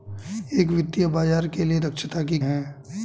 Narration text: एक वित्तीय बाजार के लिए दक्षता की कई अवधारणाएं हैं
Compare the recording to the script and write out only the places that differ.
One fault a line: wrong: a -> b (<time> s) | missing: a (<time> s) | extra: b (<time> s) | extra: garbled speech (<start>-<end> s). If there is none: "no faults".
missing: कई अवधारणाएं (2.4 s)